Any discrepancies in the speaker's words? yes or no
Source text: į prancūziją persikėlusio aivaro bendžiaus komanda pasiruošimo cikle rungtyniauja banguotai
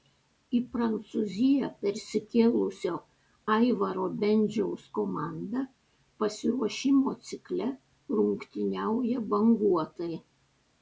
no